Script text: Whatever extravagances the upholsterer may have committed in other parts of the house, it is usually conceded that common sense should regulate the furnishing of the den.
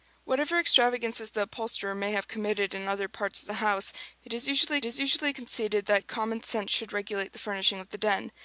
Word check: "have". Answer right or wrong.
right